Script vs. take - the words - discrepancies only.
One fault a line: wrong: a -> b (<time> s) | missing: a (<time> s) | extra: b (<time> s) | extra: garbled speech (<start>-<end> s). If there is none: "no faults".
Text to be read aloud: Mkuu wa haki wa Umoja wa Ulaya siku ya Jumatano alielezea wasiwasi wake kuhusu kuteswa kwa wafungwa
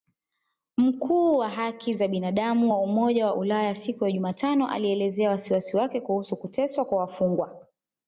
extra: za binadamu (1.9 s)